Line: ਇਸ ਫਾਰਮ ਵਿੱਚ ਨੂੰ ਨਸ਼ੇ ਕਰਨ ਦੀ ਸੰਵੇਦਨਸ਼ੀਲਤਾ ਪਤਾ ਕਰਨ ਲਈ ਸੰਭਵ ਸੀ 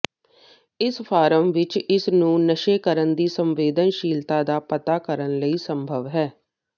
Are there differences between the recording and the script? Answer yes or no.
yes